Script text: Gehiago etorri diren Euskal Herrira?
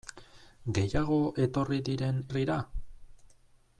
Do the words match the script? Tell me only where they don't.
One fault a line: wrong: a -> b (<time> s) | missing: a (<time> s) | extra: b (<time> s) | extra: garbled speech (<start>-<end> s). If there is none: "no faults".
missing: Euskal (2.2 s)